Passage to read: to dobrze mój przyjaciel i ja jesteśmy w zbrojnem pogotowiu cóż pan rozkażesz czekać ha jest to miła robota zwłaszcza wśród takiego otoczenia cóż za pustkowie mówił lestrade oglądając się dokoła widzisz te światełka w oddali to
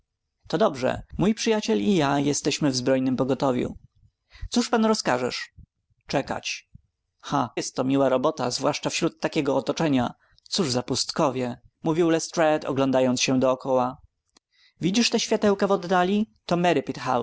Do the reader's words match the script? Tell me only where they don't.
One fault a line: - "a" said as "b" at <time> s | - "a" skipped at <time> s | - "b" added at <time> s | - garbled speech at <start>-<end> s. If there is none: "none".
none